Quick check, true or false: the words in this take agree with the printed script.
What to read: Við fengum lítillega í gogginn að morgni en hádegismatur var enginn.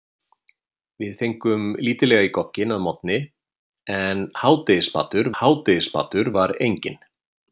false